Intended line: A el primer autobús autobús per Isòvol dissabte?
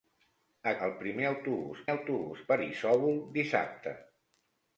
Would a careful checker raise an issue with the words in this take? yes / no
no